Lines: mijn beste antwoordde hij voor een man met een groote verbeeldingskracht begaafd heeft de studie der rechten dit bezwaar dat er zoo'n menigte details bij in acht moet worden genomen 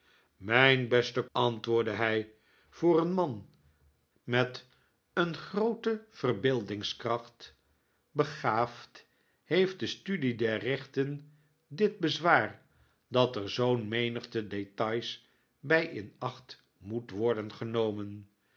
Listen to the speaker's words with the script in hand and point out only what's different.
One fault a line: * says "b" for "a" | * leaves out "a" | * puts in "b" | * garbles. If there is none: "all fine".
all fine